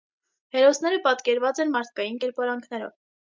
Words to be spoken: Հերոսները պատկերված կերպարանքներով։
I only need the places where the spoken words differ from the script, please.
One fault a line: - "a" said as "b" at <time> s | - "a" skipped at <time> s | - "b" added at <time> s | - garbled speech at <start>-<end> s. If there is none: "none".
- "են մարդկային" added at 1.7 s